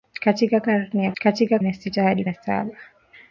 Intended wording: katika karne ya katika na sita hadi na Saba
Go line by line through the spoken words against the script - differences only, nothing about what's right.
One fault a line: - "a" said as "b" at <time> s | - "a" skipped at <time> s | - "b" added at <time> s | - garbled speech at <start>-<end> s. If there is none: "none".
none